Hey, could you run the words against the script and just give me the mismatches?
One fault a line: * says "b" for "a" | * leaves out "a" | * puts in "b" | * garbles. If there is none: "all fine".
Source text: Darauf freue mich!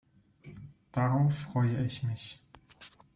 * puts in "ich"